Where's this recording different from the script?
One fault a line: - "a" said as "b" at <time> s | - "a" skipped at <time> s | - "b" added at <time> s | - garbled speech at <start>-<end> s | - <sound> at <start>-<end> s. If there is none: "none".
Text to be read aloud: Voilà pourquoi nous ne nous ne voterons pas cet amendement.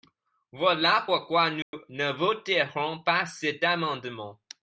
- dropout at 1.6-1.7 s
- "nous ne" skipped at 2.1 s